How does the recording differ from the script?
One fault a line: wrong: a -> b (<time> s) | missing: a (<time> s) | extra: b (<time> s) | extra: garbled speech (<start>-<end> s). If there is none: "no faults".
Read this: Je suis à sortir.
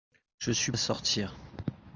no faults